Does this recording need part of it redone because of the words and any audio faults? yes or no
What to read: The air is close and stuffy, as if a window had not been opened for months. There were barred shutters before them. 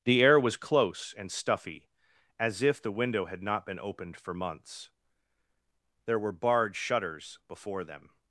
yes